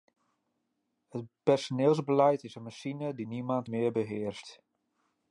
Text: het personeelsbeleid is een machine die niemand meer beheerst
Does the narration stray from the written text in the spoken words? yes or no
no